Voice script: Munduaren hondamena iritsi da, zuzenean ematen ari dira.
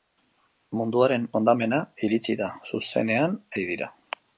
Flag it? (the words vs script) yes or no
yes